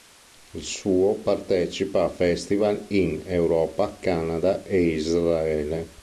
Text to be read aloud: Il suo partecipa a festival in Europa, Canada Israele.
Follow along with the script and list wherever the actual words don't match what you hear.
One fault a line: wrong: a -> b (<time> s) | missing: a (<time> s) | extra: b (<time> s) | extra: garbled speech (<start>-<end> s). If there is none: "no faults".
extra: e (4.6 s)